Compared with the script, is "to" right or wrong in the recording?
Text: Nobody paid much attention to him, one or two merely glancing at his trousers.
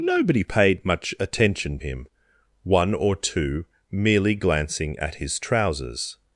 wrong